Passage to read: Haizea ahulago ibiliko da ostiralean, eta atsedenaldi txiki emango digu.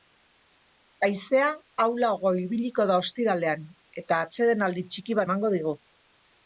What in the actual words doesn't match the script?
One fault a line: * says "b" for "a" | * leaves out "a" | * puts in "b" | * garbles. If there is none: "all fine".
all fine